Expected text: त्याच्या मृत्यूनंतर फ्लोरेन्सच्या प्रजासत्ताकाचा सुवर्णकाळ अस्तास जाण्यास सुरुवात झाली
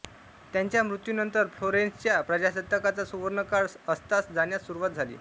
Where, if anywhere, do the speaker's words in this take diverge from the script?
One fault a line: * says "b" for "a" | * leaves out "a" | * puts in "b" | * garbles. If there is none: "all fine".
all fine